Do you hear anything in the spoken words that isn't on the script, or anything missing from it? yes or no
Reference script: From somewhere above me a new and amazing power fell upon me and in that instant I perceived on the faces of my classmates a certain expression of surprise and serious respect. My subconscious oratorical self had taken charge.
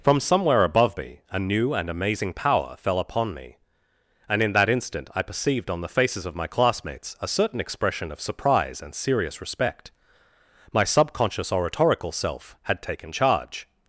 no